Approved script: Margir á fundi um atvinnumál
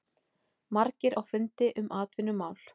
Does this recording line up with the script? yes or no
yes